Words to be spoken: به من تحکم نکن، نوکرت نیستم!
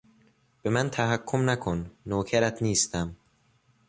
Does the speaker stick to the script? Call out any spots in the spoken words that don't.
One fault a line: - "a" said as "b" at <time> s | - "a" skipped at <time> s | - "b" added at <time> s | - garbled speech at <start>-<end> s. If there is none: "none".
none